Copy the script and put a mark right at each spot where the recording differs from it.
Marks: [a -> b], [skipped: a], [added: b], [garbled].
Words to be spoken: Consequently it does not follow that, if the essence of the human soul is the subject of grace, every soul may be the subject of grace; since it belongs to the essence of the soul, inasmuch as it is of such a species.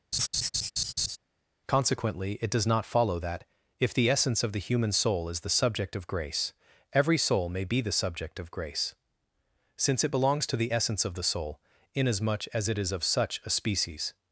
Consequently it does not follow that, if the essence of the human soul is the subject of grace, every soul may be the subject of grace; since it belongs to the essence of the soul, inasmuch as it is of such a species.